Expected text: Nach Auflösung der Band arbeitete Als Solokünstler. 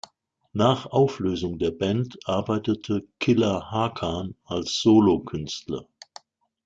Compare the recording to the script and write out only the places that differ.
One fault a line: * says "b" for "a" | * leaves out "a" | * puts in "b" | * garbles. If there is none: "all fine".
* puts in "Killa Hakan"